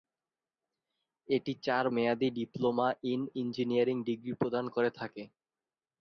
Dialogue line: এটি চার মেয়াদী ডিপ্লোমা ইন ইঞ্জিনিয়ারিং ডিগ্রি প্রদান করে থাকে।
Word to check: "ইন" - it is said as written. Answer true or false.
true